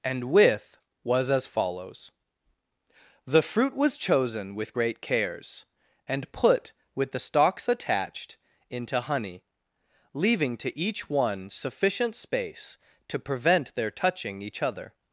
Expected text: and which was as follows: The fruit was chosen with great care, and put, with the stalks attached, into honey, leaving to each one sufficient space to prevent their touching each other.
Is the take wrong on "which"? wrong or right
wrong